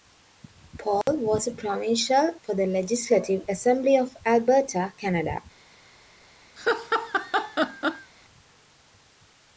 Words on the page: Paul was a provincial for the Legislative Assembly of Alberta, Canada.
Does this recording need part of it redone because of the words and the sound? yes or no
yes